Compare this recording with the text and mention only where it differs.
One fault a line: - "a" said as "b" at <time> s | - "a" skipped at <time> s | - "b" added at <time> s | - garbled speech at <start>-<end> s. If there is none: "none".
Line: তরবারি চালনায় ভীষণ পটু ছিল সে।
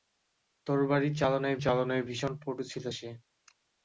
- "চালনায়" added at 1.6 s